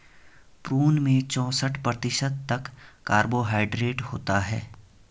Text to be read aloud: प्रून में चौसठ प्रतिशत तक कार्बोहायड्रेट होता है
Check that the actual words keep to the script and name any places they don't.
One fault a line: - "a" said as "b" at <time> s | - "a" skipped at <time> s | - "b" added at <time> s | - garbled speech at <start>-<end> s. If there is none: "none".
none